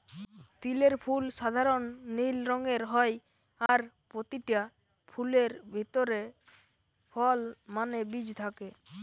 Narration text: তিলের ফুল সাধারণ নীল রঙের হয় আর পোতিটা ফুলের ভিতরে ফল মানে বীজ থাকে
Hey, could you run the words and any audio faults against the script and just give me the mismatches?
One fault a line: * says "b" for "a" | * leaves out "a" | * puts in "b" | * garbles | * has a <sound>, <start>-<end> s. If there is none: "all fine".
* has a dropout, 3.7-3.7 s